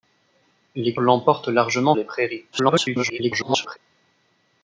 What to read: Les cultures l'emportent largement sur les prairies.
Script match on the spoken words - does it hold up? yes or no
no